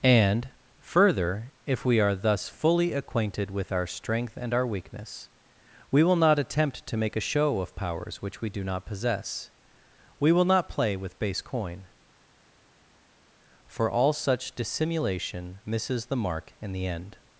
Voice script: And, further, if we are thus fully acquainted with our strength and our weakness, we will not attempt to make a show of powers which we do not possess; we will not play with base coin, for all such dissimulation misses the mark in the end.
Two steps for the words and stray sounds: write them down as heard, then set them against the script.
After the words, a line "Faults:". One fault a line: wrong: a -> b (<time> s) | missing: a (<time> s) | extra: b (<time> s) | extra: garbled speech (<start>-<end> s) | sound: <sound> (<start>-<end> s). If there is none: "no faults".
And, further, if we are thus fully acquainted with our strength and our weakness, we will not attempt to make a show of powers which we do not possess; we will not play with base coin, for all such dissimulation misses the mark in the end.
Faults:
no faults